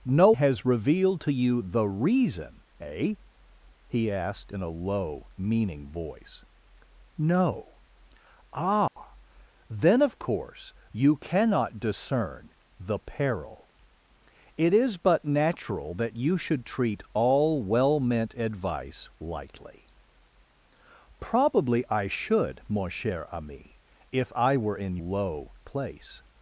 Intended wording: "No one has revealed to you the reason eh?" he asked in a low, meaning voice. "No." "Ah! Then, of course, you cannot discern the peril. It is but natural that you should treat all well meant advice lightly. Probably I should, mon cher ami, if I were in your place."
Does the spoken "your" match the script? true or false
false